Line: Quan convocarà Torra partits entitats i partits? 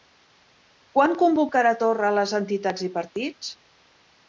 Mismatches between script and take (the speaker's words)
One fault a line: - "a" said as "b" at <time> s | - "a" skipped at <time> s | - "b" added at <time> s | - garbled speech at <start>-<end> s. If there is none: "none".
- "partits" said as "les" at 2.2 s